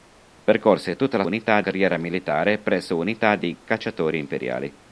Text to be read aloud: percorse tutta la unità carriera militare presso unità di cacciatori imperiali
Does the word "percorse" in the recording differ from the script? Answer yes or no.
no